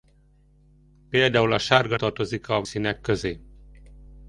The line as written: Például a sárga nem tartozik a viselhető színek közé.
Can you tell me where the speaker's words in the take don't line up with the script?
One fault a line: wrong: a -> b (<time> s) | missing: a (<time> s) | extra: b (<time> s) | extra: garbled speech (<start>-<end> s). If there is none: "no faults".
missing: nem (2.0 s)
missing: viselhető (2.6 s)